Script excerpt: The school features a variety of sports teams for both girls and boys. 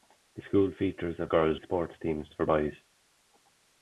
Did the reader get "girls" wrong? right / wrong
wrong